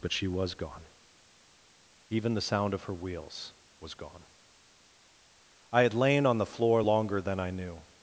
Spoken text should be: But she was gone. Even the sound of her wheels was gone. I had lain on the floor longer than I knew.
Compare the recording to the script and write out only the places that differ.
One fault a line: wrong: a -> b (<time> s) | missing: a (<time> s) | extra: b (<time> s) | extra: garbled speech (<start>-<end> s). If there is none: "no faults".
no faults